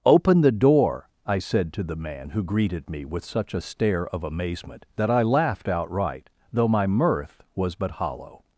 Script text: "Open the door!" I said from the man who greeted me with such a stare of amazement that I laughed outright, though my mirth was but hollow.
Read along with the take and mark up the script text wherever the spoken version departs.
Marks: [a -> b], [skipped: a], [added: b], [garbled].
"Open the door!" I said [from -> to] the man who greeted me with such a stare of amazement that I laughed outright, though my mirth was but hollow.